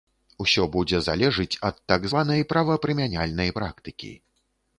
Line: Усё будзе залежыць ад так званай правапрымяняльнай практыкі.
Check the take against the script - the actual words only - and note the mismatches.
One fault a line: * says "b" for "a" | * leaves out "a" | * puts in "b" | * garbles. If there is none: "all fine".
all fine